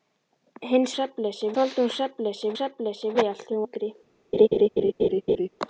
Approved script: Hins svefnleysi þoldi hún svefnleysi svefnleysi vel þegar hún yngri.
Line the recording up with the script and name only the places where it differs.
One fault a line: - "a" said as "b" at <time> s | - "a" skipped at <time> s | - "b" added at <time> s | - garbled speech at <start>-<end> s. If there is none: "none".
none